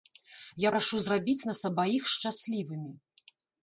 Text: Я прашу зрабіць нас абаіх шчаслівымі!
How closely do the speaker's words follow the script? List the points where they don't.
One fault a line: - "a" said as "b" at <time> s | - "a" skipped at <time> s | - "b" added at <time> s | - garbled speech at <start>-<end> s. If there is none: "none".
none